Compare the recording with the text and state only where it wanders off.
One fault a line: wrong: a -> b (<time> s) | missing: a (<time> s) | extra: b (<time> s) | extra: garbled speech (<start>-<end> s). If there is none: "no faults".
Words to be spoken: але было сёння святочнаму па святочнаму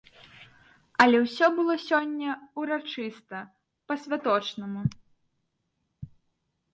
extra: ўсё (1.2 s)
wrong: святочнаму -> ўрачыста (2.6 s)